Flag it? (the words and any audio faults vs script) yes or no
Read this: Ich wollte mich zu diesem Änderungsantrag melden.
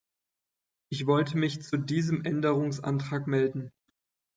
no